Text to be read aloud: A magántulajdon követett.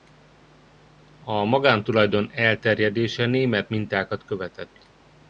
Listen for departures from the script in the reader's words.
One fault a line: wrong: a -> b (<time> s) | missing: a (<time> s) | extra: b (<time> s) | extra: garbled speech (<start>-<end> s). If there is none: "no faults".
extra: elterjedése német mintákat (2.3 s)